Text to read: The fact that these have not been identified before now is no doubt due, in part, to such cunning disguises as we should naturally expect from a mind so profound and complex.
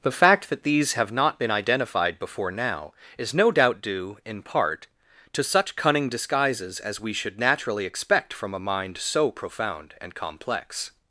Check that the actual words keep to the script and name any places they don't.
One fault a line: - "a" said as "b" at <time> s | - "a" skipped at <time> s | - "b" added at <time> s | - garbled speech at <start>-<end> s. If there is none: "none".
none